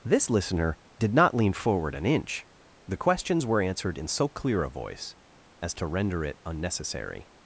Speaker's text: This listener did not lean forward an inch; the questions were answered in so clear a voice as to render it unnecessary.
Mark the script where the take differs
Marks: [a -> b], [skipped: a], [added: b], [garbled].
This listener did not lean forward an inch; the questions were answered in so clear a voice as to render it unnecessary.